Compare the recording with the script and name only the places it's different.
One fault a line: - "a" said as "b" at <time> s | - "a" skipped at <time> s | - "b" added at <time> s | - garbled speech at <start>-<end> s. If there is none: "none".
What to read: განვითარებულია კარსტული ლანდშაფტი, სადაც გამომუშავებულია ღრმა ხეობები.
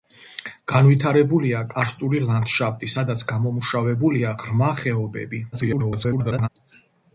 - garbled speech at 5.5-6.5 s